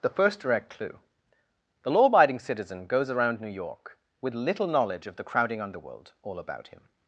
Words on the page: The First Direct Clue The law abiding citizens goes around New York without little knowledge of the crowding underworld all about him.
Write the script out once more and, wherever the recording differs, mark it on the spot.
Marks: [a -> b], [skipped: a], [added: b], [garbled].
The First Direct Clue The law abiding [citizens -> citizen] goes around New York [without -> with] little knowledge of the crowding underworld all about him.